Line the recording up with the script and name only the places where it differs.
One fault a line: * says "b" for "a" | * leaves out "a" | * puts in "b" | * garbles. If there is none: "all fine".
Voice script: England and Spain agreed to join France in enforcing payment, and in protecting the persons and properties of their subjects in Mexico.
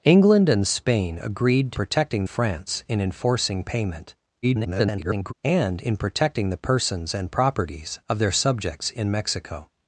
* says "protecting" for "join"
* garbles